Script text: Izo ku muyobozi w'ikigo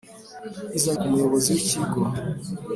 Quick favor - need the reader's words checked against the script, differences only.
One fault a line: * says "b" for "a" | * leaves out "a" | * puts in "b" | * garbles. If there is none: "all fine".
all fine